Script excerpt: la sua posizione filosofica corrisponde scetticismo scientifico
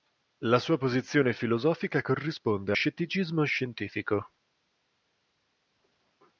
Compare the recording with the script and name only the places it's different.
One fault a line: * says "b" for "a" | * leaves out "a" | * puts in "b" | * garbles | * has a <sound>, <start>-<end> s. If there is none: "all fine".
all fine